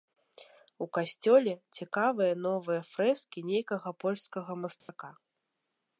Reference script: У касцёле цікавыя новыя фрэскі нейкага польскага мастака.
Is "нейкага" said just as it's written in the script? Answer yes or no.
yes